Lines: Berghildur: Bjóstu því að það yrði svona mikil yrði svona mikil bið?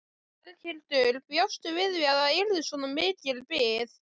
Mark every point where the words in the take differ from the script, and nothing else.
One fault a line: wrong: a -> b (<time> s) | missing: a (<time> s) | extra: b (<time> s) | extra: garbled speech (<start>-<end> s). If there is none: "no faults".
extra: við (1.8 s)
missing: yrði svona mikil (3.4 s)